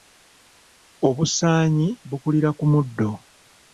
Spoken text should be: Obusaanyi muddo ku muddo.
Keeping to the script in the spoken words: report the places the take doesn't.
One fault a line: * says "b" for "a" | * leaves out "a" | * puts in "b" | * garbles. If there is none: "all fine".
* says "bukulira" for "muddo"